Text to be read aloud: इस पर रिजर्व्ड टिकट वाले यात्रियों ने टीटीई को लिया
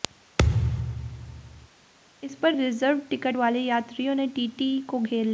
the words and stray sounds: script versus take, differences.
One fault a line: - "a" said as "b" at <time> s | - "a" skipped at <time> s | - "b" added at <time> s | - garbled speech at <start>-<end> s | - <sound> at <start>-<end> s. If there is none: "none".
- thud at 0.4-1.7 s
- "घेर" added at 5.0 s